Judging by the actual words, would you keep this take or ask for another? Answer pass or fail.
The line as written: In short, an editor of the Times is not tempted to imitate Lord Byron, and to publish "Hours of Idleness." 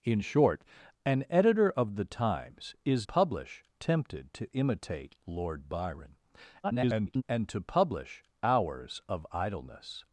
fail